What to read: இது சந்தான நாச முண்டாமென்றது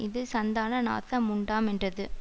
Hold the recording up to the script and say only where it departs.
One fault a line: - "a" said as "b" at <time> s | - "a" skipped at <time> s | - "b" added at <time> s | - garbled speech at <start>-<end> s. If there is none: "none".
none